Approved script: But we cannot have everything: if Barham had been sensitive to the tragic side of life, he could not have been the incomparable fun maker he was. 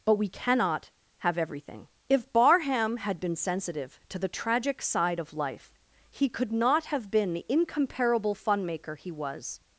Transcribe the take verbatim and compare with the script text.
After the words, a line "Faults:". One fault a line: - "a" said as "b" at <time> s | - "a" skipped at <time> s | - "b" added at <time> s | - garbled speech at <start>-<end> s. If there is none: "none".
But we cannot have everything: if Barham had been sensitive to the tragic side of life, he could not have been the incomparable fun maker he was.
Faults:
none